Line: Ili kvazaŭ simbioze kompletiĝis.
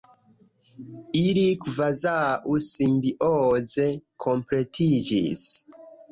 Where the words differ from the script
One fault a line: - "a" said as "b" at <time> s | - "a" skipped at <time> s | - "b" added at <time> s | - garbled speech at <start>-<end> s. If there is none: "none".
none